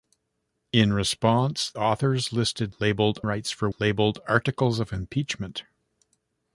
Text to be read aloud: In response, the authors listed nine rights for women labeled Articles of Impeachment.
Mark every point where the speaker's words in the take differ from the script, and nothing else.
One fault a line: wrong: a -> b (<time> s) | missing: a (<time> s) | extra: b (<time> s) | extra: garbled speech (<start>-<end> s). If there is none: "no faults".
missing: the (1.7 s)
wrong: nine -> labeled (2.8 s)
missing: women (3.7 s)